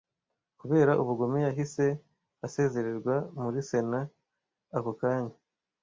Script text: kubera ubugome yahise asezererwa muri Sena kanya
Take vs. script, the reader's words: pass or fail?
fail